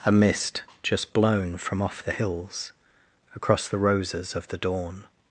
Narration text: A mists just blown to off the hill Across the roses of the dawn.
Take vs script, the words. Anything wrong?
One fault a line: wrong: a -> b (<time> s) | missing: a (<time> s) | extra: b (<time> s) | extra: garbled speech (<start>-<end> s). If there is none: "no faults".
wrong: mists -> mist (0.1 s)
wrong: to -> from (1.6 s)
wrong: hill -> hills (2.1 s)